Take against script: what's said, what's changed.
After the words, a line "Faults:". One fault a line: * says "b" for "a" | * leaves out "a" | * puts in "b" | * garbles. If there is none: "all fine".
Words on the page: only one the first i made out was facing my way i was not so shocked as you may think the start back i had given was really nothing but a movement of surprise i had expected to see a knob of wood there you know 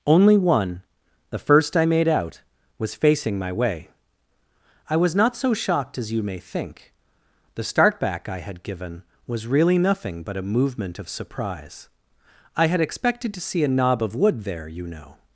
only one the first i made out was facing my way i was not so shocked as you may think the start back i had given was really nothing but a movement of surprise i had expected to see a knob of wood there you know
Faults:
all fine